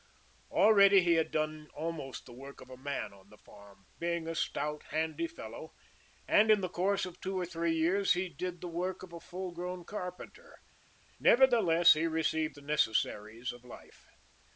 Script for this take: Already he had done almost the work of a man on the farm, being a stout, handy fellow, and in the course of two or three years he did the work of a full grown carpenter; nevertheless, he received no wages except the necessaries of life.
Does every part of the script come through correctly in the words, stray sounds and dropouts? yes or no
no